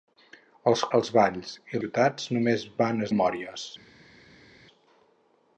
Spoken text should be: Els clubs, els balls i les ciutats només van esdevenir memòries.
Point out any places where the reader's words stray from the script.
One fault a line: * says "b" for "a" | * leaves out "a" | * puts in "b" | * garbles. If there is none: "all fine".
* leaves out "clubs"
* leaves out "les"
* leaves out "esdevenir"